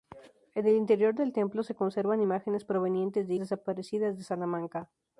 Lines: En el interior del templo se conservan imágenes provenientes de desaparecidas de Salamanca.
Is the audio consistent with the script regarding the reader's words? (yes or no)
yes